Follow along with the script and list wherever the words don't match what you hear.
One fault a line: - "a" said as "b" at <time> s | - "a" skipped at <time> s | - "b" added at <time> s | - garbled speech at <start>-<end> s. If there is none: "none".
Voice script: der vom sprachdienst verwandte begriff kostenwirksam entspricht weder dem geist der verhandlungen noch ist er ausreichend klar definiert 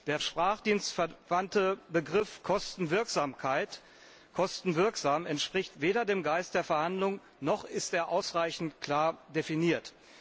- "vom" skipped at 0.2 s